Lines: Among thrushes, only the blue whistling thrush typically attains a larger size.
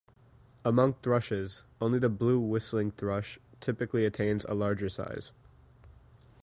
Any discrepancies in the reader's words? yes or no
no